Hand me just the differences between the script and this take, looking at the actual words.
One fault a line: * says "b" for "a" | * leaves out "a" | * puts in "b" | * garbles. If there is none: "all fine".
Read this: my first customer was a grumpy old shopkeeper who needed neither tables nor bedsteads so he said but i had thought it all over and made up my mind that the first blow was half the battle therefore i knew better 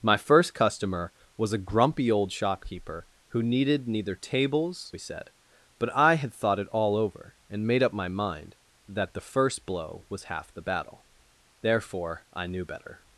* leaves out "nor bedsteads so"